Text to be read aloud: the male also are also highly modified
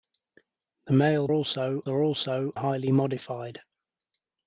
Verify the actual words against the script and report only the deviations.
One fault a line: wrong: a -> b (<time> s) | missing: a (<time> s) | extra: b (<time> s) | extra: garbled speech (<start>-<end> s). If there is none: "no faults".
no faults